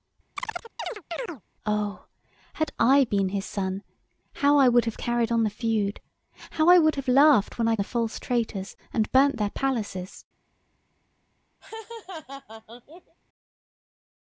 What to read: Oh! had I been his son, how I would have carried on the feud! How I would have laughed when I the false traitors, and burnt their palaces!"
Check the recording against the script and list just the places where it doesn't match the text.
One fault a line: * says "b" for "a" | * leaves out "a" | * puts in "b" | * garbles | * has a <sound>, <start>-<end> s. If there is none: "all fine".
* has a chirp, 0.4-1.4 s
* has a laugh, 11.6-13.2 s